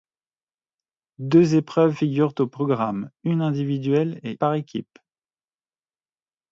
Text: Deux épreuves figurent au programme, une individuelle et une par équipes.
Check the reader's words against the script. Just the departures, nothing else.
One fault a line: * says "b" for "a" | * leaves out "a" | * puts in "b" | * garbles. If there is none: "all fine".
* leaves out "une"